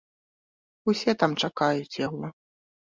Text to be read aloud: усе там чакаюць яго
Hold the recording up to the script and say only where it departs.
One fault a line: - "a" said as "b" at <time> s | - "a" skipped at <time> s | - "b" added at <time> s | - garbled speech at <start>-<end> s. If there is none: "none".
none